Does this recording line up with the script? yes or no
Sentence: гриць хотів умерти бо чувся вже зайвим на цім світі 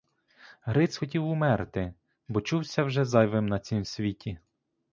yes